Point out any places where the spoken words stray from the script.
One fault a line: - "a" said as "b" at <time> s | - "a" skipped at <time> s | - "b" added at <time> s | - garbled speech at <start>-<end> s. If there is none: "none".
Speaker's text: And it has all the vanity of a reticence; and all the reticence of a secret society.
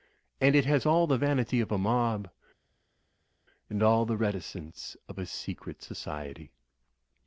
- "reticence" said as "mob" at 1.8 s